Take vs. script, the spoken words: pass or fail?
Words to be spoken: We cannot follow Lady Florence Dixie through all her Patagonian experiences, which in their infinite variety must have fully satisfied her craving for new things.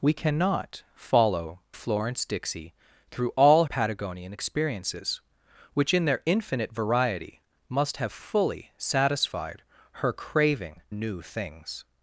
fail